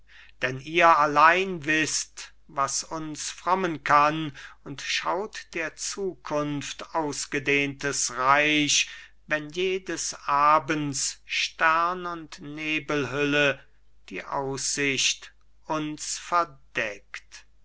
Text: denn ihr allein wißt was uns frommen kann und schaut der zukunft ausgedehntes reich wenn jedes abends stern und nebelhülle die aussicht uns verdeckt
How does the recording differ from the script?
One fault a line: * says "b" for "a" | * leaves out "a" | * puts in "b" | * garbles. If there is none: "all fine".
all fine